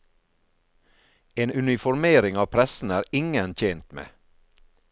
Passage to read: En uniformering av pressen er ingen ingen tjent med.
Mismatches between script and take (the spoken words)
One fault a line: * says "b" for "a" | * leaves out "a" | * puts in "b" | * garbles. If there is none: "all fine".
* leaves out "ingen"